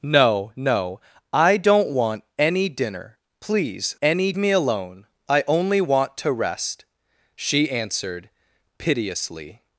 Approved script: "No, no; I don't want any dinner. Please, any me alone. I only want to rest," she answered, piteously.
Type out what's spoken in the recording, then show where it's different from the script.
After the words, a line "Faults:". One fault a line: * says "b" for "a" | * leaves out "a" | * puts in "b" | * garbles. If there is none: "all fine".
"No, no; I don't want any dinner. Please, any me alone. I only want to rest," she answered, piteously.
Faults:
all fine